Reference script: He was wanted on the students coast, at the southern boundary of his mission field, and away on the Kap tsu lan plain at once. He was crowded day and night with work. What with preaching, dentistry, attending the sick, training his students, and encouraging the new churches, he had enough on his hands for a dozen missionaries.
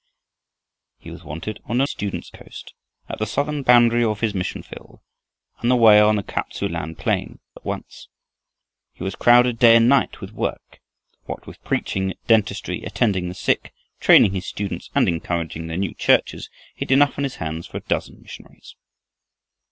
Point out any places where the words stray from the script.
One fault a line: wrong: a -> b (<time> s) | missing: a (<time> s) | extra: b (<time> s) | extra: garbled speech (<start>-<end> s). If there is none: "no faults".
no faults